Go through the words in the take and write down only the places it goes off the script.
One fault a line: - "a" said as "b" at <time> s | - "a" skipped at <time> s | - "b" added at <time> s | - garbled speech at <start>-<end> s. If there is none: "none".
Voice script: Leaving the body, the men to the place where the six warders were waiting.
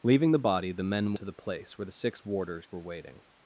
none